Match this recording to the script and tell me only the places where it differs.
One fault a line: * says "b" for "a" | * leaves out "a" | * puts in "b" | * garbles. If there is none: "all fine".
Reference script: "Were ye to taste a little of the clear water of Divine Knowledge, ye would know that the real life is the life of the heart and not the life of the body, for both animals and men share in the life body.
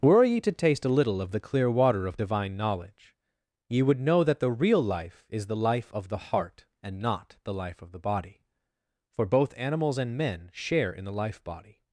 all fine